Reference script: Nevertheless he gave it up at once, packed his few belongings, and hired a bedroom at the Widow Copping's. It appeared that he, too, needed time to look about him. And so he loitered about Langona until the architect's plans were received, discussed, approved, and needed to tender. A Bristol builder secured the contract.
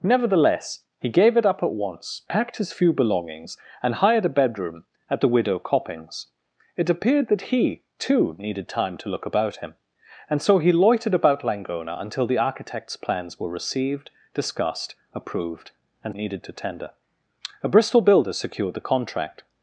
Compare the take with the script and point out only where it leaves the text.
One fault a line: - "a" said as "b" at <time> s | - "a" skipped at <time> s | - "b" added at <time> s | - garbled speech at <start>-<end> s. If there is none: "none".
none